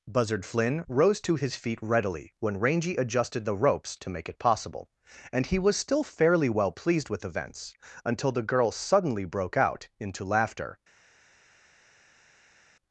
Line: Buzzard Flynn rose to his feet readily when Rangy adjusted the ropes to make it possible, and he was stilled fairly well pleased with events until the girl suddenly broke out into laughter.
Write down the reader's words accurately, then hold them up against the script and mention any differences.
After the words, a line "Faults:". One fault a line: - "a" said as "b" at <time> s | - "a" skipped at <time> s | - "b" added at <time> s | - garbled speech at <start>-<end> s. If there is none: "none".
Buzzard Flynn rose to his feet readily when Rangy adjusted the ropes to make it possible, and he was still fairly well pleased with events until the girl suddenly broke out into laughter.
Faults:
- "stilled" said as "still" at 5.8 s